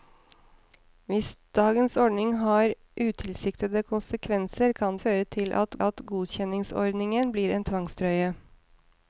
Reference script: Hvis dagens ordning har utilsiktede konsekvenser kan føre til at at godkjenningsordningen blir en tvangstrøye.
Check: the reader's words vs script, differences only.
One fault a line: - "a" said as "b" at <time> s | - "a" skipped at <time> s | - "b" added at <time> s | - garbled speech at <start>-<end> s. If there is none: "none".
none